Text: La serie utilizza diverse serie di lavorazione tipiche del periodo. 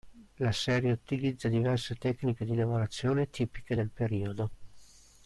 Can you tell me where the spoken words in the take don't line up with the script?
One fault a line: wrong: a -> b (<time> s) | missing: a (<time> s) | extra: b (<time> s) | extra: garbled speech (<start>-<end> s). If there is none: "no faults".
wrong: serie -> tecniche (1.9 s)